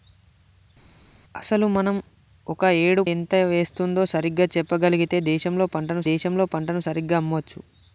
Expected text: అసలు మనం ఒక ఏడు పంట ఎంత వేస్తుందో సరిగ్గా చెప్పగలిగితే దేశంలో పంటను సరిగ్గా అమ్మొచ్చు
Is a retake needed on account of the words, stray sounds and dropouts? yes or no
yes